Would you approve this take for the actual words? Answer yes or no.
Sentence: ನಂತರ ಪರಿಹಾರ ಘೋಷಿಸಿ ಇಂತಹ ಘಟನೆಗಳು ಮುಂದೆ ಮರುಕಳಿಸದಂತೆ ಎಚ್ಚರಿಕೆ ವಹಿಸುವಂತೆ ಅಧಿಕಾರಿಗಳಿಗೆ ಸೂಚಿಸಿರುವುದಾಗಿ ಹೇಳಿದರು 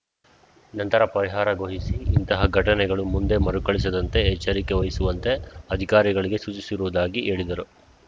yes